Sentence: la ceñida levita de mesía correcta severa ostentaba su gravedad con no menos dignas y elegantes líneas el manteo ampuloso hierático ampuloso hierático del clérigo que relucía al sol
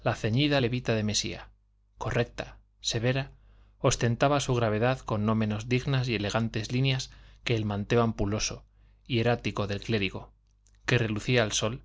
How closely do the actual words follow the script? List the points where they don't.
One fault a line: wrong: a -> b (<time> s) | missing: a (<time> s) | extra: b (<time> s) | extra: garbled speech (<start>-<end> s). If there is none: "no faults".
extra: que (7.4 s)
missing: ampuloso hierático (9.7 s)